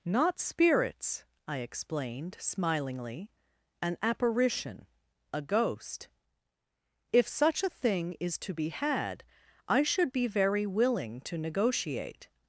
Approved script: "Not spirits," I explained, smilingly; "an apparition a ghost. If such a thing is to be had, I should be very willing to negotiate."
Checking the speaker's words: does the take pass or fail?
pass